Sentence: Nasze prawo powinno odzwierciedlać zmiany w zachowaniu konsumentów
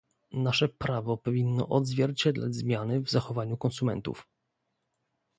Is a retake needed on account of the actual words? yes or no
no